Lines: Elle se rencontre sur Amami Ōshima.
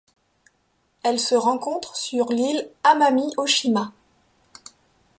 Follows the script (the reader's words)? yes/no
no